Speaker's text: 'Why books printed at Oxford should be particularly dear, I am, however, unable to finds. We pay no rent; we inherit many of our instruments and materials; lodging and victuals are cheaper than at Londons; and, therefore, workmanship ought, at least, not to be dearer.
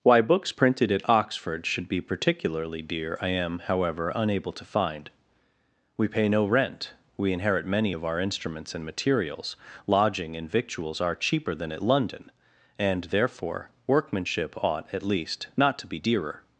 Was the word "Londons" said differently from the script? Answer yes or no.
yes